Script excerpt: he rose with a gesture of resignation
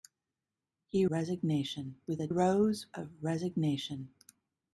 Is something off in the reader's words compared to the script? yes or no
yes